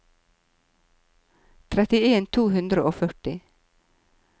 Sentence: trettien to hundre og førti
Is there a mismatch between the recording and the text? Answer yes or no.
no